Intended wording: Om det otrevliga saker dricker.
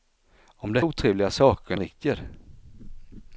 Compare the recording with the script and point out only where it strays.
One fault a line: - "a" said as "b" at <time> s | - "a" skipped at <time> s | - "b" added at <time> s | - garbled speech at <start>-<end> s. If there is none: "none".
none